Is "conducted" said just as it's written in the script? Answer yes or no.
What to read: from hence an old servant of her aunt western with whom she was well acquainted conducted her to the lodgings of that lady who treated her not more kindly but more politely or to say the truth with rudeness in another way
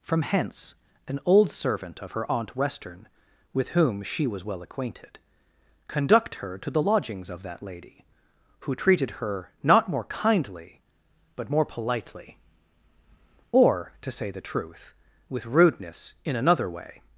no